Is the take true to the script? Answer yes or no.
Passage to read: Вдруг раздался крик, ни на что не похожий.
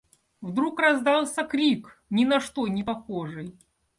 yes